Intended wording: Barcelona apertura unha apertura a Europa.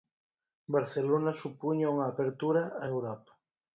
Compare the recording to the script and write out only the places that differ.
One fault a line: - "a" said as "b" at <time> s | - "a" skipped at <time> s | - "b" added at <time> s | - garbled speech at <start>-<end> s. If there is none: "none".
- "apertura" said as "supuña" at 1.4 s